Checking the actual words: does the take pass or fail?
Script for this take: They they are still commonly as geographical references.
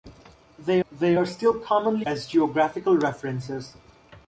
pass